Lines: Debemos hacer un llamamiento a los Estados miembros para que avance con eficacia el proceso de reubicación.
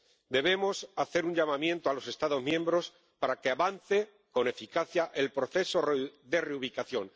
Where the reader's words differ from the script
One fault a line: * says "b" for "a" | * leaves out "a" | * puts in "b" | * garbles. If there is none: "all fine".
all fine